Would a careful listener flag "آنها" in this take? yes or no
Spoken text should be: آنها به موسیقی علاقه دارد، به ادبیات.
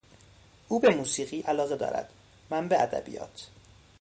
yes